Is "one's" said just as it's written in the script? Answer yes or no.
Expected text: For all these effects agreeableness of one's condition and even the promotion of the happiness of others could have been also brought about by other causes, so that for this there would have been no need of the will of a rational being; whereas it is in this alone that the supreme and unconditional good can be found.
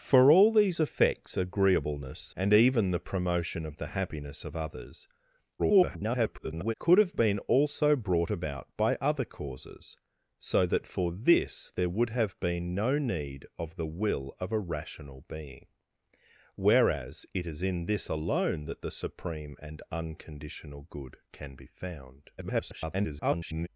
no